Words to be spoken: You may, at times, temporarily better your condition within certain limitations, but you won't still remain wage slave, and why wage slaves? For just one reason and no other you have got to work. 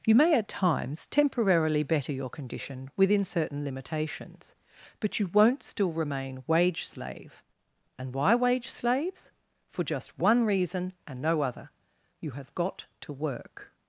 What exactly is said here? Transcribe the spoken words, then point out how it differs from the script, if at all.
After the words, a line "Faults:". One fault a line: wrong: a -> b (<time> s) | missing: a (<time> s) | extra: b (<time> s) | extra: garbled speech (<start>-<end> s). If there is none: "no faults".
You may, at times, temporarily better your condition within certain limitations, but you won't still remain wage slave, and why wage slaves? For just one reason and no other you have got to work.
Faults:
no faults